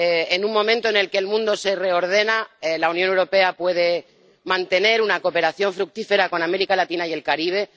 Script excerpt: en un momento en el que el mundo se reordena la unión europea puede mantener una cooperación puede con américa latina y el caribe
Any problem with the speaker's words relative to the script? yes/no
yes